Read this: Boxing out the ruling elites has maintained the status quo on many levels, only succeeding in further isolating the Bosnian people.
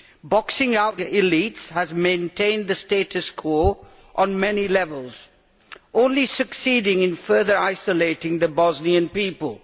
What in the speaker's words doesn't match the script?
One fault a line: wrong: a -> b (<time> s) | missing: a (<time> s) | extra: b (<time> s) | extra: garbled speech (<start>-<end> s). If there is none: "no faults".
missing: the ruling (1.0 s)